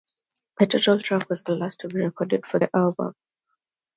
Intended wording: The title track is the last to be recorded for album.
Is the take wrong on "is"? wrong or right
wrong